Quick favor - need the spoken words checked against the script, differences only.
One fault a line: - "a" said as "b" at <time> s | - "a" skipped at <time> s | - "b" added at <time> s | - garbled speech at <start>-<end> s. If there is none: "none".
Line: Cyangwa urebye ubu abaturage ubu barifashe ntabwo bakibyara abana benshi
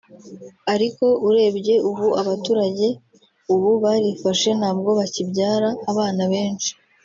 - "Cyangwa" said as "Ariko" at 0.7 s